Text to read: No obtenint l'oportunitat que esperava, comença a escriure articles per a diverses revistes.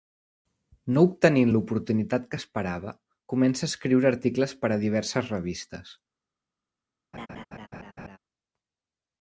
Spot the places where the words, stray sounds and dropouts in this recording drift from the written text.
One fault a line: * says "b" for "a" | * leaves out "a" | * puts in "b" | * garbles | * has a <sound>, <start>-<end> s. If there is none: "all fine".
* has a laugh, 7.1-8.2 s